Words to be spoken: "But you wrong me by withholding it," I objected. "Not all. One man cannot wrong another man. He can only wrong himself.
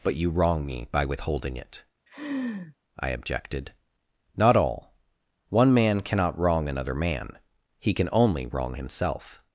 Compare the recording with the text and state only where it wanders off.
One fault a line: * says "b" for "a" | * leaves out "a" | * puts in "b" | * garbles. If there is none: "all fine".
all fine